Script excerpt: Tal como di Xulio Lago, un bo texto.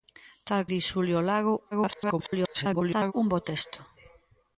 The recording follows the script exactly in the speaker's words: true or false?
false